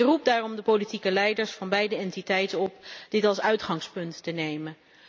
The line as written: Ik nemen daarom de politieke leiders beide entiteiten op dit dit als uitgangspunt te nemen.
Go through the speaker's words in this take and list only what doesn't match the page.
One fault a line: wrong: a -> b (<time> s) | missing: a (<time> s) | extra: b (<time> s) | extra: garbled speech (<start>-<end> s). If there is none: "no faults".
wrong: nemen -> roep (0.1 s)
extra: van (1.5 s)
missing: dit (3.2 s)